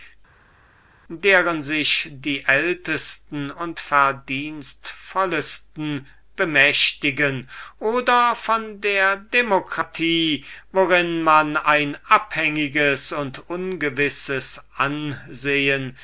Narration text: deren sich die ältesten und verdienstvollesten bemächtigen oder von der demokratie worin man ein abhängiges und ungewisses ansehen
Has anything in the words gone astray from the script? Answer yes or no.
no